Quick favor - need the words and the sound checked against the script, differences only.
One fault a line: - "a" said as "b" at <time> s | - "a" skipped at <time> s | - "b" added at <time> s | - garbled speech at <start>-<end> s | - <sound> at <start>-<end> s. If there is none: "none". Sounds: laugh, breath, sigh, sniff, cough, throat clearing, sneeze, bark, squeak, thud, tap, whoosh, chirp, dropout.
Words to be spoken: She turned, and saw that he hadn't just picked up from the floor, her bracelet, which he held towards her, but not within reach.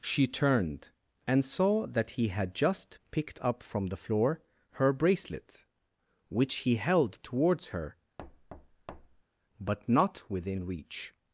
- "hadn't" said as "had" at 2.3 s
- thud at 8.2-9.2 s